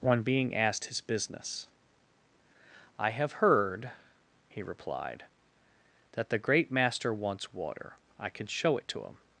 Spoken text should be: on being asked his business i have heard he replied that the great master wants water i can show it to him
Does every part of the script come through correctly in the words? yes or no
yes